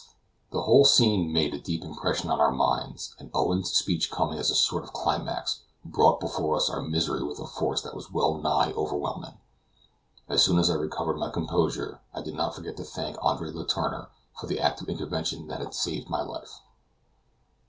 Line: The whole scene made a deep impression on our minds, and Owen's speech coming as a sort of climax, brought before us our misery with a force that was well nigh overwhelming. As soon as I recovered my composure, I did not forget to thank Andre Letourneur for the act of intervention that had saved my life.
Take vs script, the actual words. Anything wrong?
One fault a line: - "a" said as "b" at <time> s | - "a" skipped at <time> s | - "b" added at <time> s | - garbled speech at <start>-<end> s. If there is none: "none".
none